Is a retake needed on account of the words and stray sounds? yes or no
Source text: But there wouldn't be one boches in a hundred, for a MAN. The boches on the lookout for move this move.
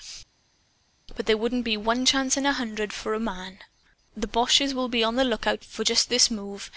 yes